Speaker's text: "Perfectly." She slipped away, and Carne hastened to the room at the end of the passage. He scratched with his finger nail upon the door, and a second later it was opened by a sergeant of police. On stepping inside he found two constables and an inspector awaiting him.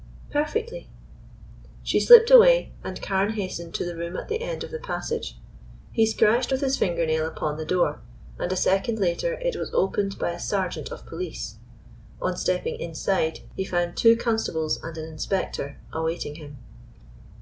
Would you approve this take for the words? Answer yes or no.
yes